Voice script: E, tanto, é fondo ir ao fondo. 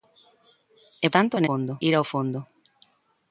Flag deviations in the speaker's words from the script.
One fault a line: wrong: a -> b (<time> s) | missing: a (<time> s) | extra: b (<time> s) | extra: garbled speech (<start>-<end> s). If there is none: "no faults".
no faults